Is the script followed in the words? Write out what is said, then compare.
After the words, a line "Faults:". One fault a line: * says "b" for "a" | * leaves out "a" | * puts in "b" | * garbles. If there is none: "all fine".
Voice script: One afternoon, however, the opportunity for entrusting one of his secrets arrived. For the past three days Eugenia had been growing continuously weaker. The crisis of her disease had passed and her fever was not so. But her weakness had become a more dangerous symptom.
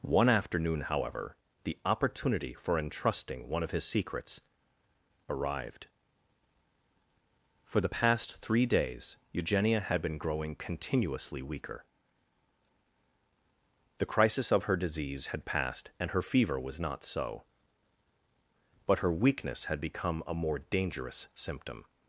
One afternoon, however, the opportunity for entrusting one of his secrets arrived. For the past three days Eugenia had been growing continuously weaker. The crisis of her disease had passed and her fever was not so. But her weakness had become a more dangerous symptom.
Faults:
all fine